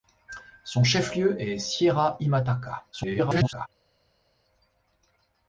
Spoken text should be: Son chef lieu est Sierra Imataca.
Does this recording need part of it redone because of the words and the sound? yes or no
yes